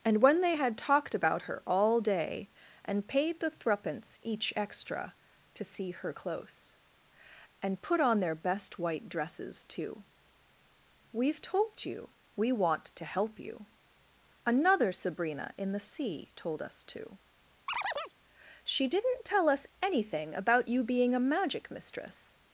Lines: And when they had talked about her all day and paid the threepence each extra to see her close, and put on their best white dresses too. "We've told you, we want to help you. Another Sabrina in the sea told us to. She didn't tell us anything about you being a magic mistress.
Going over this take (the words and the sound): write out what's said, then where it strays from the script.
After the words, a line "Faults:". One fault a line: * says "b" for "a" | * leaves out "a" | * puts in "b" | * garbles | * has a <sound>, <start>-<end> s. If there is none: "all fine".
And when they had talked about her all day and paid the threepence each extra to see her close, and put on their best white dresses too. "We've told you, we want to help you. Another Sabrina in the sea told us to. She didn't tell us anything about you being a magic mistress.
Faults:
* has a chirp, 17.7-18.1 s